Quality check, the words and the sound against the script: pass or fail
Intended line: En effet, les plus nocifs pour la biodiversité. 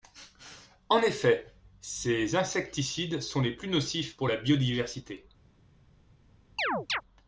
fail